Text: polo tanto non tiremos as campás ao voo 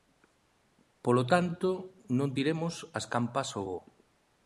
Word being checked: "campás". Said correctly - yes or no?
yes